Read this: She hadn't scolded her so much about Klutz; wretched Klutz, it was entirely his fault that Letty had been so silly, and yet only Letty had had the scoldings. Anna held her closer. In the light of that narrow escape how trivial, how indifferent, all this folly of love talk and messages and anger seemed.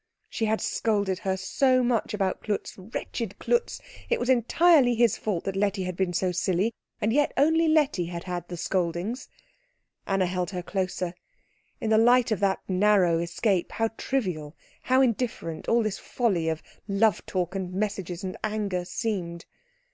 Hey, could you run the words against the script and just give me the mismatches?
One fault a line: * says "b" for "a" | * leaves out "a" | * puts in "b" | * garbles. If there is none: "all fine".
* says "had" for "hadn't"